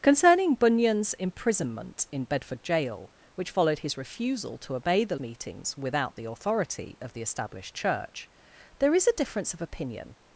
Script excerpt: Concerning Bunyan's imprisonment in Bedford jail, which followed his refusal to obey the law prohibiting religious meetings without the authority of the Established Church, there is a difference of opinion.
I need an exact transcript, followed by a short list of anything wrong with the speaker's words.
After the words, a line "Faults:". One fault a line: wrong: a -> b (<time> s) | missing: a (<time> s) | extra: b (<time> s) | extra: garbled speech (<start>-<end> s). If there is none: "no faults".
Concerning Bunyan's imprisonment in Bedford jail, which followed his refusal to obey the meetings without the authority of the Established Church, there is a difference of opinion.
Faults:
missing: law prohibiting religious (5.2 s)